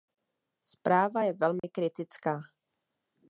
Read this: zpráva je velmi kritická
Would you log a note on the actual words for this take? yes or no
no